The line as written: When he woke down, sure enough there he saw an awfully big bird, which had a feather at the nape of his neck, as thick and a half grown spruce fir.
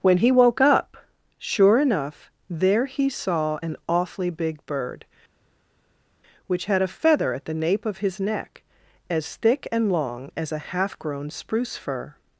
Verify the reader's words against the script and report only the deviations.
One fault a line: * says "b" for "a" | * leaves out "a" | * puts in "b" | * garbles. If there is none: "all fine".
* says "up" for "down"
* puts in "long as"